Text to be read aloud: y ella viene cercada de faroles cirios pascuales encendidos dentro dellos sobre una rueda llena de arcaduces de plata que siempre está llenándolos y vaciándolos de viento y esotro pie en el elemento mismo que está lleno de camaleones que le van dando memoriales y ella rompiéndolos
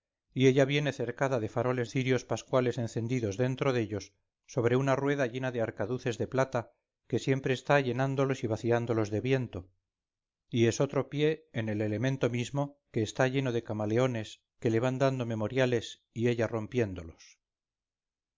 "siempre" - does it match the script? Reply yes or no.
yes